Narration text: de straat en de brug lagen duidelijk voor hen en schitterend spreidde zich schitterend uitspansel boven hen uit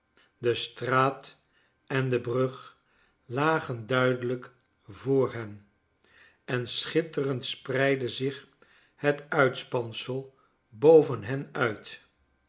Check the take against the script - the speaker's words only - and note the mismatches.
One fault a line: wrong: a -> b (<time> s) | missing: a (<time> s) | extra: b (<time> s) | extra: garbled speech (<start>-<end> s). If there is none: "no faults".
wrong: schitterend -> het (8.9 s)